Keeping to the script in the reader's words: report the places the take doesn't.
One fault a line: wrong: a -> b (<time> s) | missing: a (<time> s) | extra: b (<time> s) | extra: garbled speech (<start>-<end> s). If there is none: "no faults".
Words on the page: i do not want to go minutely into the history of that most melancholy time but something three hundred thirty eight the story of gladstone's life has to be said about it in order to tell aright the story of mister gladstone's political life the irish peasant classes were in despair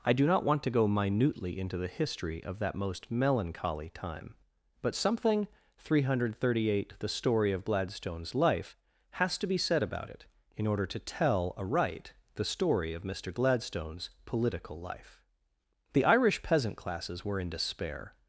no faults